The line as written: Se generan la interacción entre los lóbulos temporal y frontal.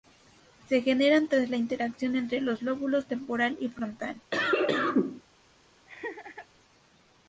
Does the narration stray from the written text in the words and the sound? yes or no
yes